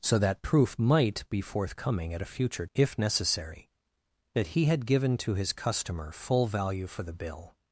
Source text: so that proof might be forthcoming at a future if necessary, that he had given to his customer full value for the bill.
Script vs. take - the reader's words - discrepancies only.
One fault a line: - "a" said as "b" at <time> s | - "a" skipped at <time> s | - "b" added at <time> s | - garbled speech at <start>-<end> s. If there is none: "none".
none